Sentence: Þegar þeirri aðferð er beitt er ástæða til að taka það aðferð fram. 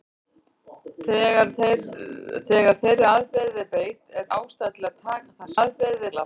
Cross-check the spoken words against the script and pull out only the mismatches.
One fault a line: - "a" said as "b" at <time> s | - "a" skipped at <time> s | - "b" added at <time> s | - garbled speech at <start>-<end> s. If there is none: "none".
none